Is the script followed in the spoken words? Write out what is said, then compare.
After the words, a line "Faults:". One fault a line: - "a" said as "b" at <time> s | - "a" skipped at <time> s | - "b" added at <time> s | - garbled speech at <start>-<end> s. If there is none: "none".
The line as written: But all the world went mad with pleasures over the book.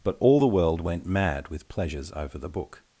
But all the world went mad with pleasures over the book.
Faults:
none